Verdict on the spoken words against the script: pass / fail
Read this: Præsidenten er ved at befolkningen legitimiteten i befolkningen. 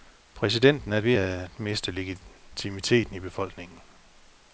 fail